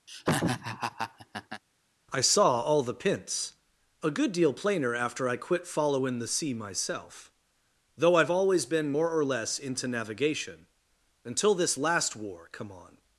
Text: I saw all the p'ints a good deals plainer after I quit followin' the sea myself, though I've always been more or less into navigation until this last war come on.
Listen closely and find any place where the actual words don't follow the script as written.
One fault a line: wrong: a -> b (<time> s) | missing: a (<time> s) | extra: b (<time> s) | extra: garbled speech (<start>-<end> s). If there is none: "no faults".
wrong: deals -> deal (4.3 s)